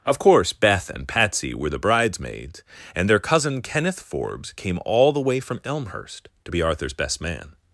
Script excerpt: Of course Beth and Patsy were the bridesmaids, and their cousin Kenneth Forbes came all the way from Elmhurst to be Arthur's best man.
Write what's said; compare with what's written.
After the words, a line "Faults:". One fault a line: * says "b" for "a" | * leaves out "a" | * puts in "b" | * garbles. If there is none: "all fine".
Of course Beth and Patsy were the bridesmaids, and their cousin Kenneth Forbes came all the way from Elmhurst to be Arthur's best man.
Faults:
all fine